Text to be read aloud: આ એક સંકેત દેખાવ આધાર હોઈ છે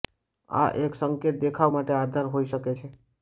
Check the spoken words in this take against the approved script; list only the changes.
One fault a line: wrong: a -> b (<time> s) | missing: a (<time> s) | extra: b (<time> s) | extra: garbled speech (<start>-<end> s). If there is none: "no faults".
extra: માટે (1.7 s)
extra: શકે (2.5 s)